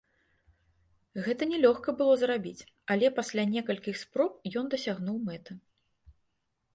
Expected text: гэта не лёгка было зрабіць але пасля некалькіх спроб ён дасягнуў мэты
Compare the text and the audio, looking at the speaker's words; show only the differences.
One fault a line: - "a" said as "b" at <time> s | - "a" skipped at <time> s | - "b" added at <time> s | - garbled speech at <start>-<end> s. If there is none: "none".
none